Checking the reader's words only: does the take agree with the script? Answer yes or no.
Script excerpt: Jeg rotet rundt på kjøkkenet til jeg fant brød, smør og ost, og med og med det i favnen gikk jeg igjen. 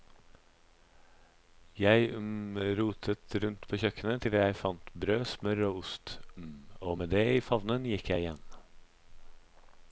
no